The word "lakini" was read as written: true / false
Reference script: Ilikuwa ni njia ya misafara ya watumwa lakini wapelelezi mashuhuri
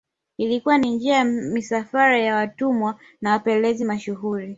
false